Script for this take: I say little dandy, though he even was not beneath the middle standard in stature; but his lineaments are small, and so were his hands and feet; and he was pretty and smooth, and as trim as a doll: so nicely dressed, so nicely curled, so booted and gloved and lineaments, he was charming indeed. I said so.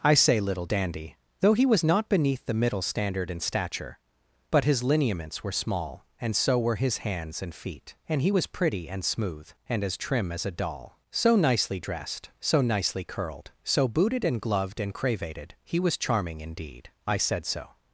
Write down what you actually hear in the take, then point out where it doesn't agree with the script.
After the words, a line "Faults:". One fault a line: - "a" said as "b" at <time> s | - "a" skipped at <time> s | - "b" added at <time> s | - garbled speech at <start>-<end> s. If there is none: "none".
I say little dandy, though he was not beneath the middle standard in stature; but his lineaments were small, and so were his hands and feet; and he was pretty and smooth, and as trim as a doll: so nicely dressed, so nicely curled, so booted and gloved and cravated, he was charming indeed. I said so.
Faults:
- "even" skipped at 1.6 s
- "are" said as "were" at 5.4 s
- "lineaments" said as "cravated" at 14.9 s